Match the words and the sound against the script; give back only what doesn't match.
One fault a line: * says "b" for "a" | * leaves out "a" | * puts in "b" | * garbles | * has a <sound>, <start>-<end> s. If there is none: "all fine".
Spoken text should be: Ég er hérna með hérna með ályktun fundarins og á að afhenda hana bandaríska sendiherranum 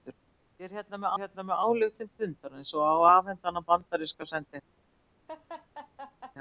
* has a laugh, 5.3-6.4 s